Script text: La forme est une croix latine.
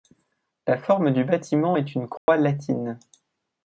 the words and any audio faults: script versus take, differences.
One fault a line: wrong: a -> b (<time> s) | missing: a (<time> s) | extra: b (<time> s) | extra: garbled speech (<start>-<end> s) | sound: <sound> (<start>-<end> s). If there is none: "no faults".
extra: du bâtiment (1.1 s)
sound: dropout (2.2-2.3 s)